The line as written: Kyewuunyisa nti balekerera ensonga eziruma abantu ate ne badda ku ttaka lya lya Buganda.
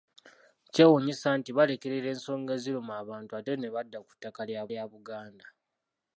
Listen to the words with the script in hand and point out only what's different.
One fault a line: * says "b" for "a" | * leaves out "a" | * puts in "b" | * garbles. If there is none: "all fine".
all fine